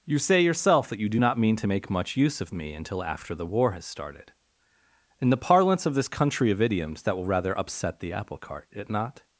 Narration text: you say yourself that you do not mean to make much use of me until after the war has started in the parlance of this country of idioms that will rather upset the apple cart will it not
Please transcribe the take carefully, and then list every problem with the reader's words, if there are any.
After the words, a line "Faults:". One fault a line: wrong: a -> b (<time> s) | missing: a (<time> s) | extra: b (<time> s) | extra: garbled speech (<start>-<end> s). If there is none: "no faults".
you say yourself that you do not mean to make much use of me until after the war has started in the parlance of this country of idioms that will rather upset the apple cart it not
Faults:
missing: will (8.7 s)